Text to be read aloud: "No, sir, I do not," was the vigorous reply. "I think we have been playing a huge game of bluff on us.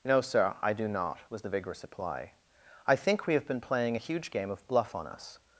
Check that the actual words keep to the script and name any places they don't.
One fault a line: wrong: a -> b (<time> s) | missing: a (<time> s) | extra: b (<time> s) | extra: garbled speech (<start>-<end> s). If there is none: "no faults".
no faults